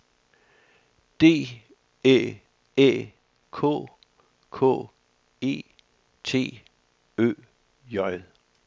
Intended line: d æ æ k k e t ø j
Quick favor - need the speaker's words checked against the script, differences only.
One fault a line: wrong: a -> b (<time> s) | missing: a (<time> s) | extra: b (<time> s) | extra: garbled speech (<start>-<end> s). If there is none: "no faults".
no faults